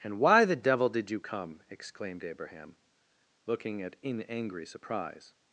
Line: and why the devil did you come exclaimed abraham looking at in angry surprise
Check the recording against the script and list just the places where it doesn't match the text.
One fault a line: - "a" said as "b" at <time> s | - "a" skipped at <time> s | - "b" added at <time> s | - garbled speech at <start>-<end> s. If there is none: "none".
none